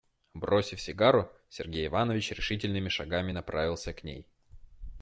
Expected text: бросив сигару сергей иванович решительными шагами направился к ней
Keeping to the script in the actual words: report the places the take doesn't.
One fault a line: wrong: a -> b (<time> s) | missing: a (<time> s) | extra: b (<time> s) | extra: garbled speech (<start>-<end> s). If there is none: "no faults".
no faults